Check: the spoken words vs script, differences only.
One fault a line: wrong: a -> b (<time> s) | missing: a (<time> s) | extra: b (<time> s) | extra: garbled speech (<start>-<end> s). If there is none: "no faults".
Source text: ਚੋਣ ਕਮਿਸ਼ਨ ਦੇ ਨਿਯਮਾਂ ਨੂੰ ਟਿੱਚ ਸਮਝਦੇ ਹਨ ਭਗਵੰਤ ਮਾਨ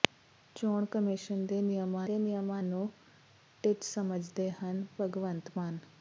extra: ਦੇ ਨਿਯਮਾਂ (2.0 s)